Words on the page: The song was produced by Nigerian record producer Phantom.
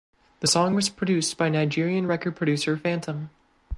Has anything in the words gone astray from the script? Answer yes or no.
no